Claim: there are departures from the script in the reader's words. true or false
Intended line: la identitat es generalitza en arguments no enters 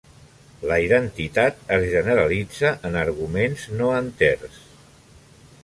false